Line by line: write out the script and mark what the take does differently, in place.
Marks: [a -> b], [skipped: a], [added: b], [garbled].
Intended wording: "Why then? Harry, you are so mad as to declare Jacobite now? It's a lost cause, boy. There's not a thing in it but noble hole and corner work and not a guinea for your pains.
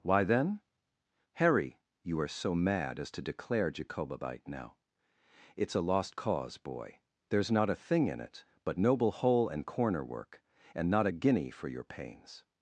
"Why then? Harry, you are so mad as to declare Jacobite now? It's a lost cause, boy. There's not a thing in it but noble hole and corner work and not a guinea for your pains.